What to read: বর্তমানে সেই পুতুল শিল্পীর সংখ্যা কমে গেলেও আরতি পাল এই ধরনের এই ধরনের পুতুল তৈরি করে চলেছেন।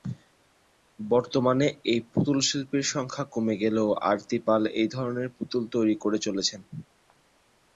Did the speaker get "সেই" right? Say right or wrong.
wrong